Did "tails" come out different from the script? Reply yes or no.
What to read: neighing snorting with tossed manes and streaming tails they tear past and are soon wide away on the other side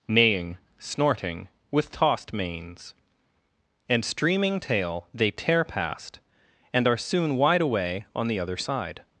yes